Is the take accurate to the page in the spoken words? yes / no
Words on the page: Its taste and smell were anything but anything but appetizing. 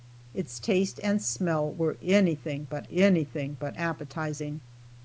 yes